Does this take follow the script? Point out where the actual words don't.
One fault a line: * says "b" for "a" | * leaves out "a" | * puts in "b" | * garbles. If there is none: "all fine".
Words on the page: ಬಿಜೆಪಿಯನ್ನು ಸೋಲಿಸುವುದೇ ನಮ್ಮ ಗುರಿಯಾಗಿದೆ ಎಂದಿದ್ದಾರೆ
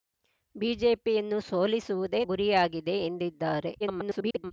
* leaves out "ನಮ್ಮ"
* garbles